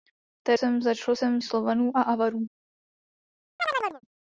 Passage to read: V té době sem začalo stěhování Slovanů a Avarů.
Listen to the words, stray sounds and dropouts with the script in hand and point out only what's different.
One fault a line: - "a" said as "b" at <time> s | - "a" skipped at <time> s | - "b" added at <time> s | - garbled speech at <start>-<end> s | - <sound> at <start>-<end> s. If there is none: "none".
- "době" skipped at 0.6 s
- "stěhování" said as "sem" at 1.1 s
- chirp at 3.6-4.0 s